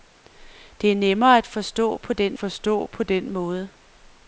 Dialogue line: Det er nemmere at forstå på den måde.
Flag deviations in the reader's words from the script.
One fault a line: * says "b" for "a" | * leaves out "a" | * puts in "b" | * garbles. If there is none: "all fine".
* puts in "forstå på den"